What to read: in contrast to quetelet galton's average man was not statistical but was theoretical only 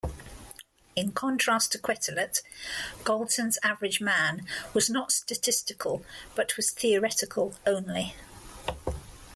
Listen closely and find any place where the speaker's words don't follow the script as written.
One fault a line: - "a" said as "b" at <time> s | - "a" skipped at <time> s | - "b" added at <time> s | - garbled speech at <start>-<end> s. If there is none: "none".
none